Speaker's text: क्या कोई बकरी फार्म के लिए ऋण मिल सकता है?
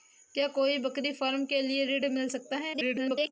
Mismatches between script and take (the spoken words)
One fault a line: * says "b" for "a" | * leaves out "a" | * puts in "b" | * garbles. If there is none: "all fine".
* garbles